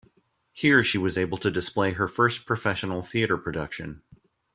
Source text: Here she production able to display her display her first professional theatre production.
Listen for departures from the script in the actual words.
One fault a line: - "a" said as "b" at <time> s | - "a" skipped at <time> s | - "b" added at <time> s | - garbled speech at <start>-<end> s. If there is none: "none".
- "production" said as "was" at 1.0 s
- "display her" skipped at 2.1 s